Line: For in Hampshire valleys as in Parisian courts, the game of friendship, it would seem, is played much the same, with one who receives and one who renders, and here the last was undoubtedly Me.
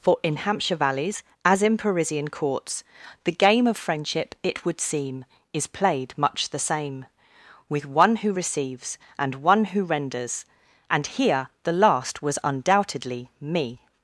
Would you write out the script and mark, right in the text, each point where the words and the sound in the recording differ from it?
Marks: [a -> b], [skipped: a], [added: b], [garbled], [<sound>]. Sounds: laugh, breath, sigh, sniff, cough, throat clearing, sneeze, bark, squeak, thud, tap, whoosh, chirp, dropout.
For in Hampshire valleys as in Parisian courts, the game of friendship, it would seem, is played much the same, with one who receives and one who renders, and here the last was undoubtedly Me.